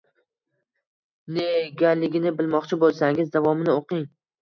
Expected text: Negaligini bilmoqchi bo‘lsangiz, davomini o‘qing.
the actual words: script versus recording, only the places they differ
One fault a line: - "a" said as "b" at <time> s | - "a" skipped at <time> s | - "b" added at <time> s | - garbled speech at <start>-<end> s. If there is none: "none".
none